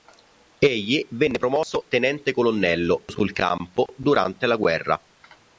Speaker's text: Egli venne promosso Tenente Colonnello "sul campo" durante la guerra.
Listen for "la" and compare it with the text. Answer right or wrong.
right